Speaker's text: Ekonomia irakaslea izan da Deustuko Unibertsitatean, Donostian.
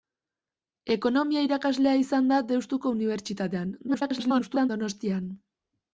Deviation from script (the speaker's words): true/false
true